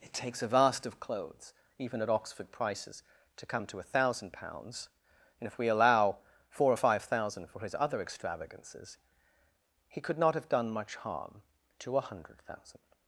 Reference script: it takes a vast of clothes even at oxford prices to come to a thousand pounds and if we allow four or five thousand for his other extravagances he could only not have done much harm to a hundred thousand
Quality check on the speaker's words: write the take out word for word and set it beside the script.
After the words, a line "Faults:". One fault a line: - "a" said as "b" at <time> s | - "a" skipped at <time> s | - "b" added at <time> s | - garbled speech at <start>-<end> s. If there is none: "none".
it takes a vast of clothes even at oxford prices to come to a thousand pounds and if we allow four or five thousand for his other extravagances he could not have done much harm to a hundred thousand
Faults:
- "only" skipped at 10.2 s